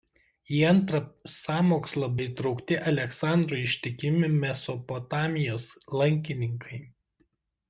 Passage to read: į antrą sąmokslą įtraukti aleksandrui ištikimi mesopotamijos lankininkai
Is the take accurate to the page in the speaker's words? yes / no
yes